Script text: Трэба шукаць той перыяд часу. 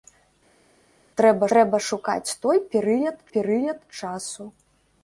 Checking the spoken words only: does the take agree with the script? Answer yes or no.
no